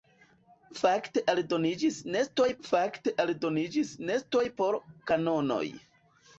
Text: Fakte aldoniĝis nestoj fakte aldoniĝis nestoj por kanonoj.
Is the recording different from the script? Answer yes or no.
no